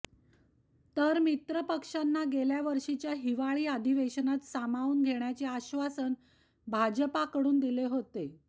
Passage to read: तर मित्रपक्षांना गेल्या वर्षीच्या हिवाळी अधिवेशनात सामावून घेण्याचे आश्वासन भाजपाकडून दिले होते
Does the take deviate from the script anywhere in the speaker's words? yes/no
no